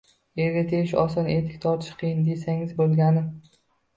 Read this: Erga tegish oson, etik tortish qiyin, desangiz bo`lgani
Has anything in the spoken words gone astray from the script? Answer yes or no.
no